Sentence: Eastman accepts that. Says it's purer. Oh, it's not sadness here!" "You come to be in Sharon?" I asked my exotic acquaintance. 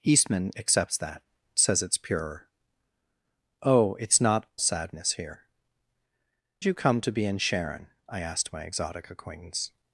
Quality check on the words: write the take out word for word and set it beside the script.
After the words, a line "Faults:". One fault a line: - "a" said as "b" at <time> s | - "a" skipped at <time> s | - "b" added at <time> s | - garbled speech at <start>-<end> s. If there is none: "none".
Eastman accepts that. Says it's purer. Oh, it's not sadness here!" "You come to be in Sharon?" I asked my exotic acquaintance.
Faults:
none